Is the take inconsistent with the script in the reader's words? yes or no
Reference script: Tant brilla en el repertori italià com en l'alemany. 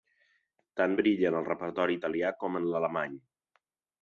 no